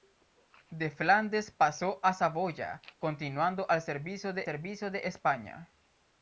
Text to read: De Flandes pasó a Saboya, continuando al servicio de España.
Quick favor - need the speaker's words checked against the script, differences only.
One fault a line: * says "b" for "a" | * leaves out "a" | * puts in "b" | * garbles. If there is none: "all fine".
* puts in "servicio de"